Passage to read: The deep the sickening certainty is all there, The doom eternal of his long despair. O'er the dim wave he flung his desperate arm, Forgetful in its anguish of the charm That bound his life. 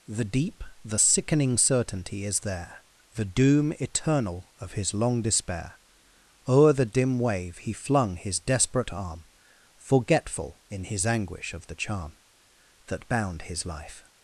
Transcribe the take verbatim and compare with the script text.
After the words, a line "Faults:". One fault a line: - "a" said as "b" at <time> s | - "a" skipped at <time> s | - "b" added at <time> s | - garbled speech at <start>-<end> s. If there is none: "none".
The deep the sickening certainty is there, The doom eternal of his long despair. O'er the dim wave he flung his desperate arm, Forgetful in his anguish of the charm That bound his life.
Faults:
- "all" skipped at 2.4 s
- "its" said as "his" at 10.9 s